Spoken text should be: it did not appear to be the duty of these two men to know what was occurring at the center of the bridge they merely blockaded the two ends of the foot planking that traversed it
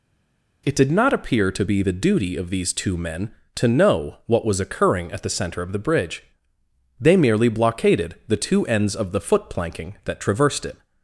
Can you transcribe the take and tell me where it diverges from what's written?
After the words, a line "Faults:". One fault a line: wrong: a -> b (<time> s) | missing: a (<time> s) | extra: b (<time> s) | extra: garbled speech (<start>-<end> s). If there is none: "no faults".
it did not appear to be the duty of these two men to know what was occurring at the center of the bridge they merely blockaded the two ends of the foot planking that traversed it
Faults:
no faults